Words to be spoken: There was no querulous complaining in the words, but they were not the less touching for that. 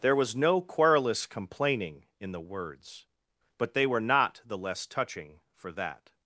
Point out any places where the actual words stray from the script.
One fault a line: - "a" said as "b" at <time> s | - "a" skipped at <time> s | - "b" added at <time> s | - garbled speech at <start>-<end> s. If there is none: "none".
none